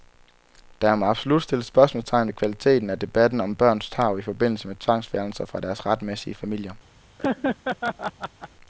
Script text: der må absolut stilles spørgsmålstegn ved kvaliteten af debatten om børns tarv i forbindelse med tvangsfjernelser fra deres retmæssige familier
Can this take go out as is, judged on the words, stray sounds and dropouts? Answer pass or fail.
fail